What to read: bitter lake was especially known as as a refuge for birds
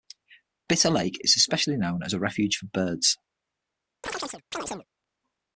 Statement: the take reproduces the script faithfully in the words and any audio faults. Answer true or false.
false